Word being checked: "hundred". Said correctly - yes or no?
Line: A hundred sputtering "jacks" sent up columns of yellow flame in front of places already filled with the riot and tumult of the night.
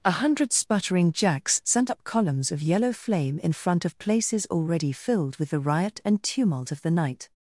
yes